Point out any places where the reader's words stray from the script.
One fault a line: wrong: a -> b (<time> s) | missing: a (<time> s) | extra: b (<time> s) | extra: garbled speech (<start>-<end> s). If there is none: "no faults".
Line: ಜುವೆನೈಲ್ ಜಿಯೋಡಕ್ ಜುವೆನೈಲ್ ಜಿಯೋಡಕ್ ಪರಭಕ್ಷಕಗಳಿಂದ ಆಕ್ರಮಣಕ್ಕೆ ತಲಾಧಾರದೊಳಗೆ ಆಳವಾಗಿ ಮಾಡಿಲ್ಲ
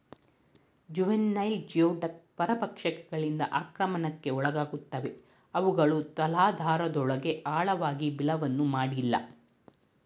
wrong: ಜುವೆನೈಲ್ ಜಿಯೋಡಕ್ ಪರಭಕ್ಷಕಗಳಿಂದ ಆಕ್ರಮಣಕ್ಕೆ -> ಪರಭಕ್ಷಕಗಳಿಂದ ಆಕ್ರಮಣಕ್ಕೆ ಒಳಗಾಗುತ್ತವೆ ಅವುಗಳು (2.4 s)
extra: ಬಿಲವನ್ನು (8.2 s)